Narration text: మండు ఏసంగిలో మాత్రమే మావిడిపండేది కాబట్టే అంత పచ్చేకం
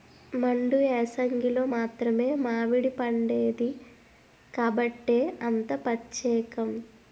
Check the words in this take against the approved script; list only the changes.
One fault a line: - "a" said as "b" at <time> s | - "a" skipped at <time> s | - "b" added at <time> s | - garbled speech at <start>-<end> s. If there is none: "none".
none